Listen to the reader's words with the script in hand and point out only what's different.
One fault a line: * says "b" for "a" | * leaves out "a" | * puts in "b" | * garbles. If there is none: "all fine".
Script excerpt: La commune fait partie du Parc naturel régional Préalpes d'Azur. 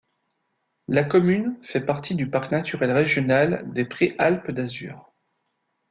* puts in "des"